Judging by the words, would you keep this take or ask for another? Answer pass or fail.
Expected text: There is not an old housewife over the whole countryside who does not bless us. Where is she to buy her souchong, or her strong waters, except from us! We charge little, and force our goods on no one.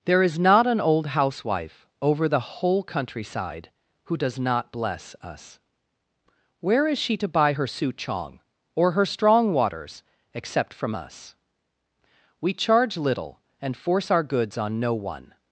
pass